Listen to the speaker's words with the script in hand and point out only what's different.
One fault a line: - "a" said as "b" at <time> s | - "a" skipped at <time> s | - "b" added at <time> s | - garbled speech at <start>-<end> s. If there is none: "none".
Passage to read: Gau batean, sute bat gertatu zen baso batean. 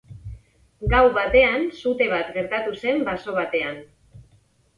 none